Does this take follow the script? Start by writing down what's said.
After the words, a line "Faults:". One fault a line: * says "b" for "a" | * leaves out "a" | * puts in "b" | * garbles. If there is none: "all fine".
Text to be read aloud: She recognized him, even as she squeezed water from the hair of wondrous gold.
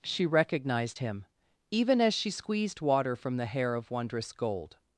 She recognized him, even as she squeezed water from the hair of wondrous gold.
Faults:
all fine